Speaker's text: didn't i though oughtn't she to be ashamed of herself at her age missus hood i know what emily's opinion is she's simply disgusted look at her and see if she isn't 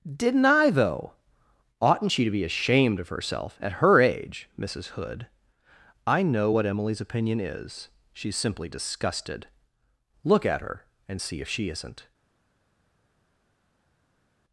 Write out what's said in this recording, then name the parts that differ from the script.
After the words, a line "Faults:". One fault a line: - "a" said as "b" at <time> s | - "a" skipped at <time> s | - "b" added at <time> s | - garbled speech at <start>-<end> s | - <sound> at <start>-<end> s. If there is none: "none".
didn't i though oughtn't she to be ashamed of herself at her age missus hood i know what emily's opinion is she's simply disgusted look at her and see if she isn't
Faults:
none